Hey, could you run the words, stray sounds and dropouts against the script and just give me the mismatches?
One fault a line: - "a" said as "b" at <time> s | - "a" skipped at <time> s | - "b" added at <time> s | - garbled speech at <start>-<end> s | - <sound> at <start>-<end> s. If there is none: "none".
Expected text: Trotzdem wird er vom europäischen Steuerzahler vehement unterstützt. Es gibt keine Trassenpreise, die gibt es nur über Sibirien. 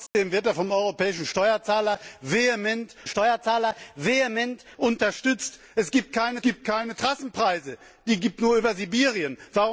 - dropout at 0.1-0.1 s
- "Steuerzahler vehement" added at 3.1 s
- "gibt keine" added at 6.4 s
- "es" skipped at 8.4 s